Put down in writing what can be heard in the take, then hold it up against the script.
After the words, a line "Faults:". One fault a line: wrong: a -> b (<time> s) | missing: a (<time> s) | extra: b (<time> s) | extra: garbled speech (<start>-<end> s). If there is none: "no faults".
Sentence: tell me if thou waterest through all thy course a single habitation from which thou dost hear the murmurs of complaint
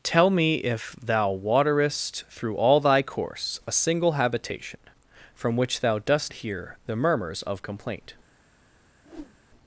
tell me if thou waterest through all thy course a single habitation from which thou dost hear the murmurs of complaint
Faults:
no faults